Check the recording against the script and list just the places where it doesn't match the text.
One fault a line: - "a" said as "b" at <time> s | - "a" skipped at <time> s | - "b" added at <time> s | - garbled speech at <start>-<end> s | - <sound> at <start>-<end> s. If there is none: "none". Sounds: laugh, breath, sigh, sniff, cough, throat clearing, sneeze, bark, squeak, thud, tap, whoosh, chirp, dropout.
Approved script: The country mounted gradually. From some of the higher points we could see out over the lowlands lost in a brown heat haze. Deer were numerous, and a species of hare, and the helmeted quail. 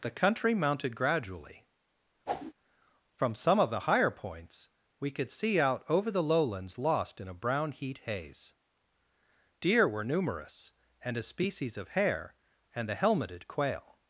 - whoosh at 2.3-2.5 s